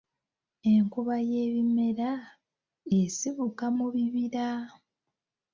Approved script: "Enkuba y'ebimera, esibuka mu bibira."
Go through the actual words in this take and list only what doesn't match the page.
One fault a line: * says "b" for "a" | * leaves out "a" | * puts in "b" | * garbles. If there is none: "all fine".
all fine